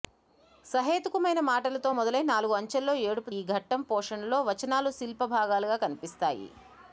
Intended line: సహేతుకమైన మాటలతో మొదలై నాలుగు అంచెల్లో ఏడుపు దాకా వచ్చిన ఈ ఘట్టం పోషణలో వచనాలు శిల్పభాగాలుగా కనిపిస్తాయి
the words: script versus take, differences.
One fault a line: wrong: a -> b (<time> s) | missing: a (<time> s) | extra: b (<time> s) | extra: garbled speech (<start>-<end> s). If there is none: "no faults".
missing: దాకా వచ్చిన (3.3 s)